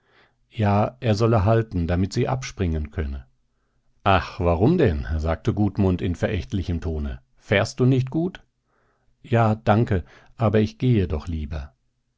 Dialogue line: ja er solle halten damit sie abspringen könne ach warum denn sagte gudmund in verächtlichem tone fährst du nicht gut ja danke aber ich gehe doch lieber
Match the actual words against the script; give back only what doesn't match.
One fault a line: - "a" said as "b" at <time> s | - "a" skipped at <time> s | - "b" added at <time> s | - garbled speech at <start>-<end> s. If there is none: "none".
none